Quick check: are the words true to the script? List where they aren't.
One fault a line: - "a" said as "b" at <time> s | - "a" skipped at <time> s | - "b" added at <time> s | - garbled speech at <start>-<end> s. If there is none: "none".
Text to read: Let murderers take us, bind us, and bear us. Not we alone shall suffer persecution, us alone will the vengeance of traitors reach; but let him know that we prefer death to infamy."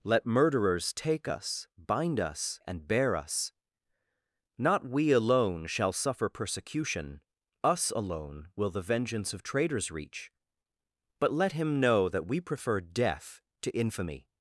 none